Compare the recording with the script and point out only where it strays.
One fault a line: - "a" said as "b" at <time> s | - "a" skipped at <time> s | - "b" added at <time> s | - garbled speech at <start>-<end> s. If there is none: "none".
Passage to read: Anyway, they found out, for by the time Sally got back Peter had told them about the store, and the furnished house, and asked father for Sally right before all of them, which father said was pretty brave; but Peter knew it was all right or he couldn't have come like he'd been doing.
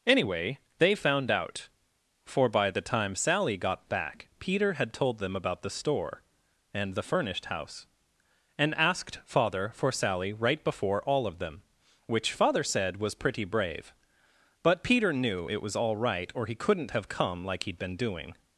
none